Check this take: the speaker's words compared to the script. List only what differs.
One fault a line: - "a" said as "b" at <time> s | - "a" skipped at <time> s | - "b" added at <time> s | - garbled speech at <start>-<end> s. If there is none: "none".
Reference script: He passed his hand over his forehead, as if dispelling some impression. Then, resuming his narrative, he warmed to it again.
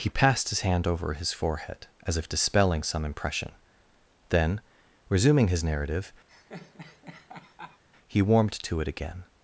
none